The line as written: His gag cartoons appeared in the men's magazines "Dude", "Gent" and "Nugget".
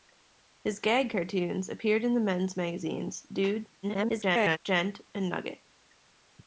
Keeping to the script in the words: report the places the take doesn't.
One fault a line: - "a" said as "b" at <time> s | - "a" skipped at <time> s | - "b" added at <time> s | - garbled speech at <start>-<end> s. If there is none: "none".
- garbled speech at 3.8-4.6 s